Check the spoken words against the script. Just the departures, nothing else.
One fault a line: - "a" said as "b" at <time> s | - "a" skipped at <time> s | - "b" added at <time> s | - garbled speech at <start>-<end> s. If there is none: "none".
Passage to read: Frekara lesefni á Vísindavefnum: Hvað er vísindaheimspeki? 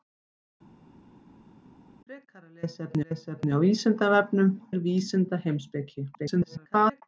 - "lesefni" added at 3.1 s
- "Hvað" skipped at 4.5 s
- garbled speech at 6.1-7.0 s